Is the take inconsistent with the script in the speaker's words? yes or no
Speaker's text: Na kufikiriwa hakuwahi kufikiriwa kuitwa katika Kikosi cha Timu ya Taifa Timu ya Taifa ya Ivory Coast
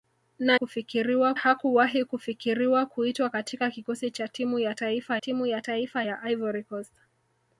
no